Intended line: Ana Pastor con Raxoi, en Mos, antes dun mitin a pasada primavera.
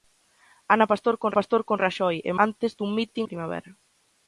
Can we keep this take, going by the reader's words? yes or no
no